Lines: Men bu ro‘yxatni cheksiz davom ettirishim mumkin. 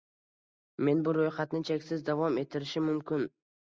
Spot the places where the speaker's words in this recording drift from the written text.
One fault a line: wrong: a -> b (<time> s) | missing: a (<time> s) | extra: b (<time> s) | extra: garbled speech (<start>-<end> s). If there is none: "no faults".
no faults